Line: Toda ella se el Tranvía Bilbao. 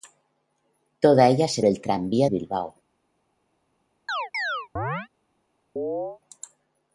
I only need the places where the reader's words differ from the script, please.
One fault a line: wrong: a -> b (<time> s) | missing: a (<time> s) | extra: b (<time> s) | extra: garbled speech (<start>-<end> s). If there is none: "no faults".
no faults